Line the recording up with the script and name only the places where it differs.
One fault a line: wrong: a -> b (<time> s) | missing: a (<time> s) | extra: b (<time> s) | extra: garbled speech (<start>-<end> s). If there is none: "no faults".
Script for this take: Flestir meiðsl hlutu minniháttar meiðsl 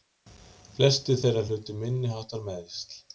wrong: meiðsl -> þeirra (1.2 s)